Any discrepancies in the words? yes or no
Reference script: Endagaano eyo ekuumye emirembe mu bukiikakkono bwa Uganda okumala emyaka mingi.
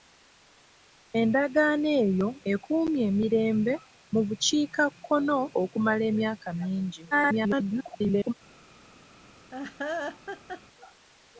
yes